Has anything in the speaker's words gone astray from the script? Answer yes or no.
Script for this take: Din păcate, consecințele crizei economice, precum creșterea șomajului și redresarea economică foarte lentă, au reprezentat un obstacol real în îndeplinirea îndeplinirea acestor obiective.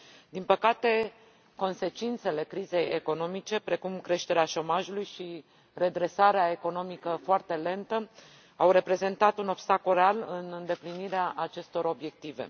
yes